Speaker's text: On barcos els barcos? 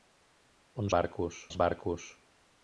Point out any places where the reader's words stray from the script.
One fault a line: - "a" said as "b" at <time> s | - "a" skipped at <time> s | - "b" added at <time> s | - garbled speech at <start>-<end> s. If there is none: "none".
none